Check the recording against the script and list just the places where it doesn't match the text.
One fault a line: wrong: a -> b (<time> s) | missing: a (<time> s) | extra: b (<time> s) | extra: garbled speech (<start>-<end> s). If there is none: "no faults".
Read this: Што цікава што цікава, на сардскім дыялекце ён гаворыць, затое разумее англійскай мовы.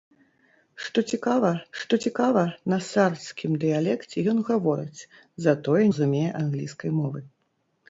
no faults